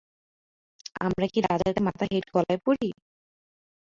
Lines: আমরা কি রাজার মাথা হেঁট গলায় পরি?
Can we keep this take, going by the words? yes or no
yes